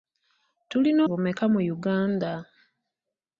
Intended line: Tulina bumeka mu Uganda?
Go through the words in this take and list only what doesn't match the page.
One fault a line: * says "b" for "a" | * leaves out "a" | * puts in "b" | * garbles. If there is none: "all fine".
all fine